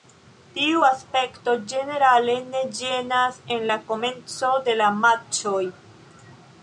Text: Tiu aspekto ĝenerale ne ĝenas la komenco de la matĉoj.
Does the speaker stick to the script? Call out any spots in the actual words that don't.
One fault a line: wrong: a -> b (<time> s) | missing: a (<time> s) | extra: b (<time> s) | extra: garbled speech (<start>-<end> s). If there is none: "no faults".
extra: en (3.6 s)